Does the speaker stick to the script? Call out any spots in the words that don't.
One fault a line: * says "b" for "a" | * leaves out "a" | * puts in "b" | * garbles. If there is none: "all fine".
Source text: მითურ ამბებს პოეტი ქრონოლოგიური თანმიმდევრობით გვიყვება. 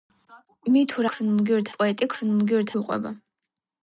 * says "ქრონოლოგიური" for "ამბებს"
* leaves out "თანმიმდევრობით"